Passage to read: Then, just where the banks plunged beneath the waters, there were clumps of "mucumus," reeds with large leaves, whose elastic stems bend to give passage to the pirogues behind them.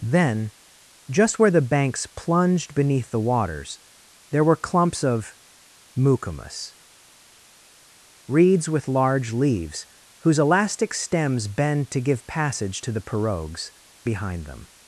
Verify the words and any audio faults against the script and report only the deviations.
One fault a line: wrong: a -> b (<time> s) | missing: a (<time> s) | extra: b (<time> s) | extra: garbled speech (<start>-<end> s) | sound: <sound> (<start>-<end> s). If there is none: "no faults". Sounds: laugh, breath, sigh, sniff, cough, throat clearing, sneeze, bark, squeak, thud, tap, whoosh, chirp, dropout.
no faults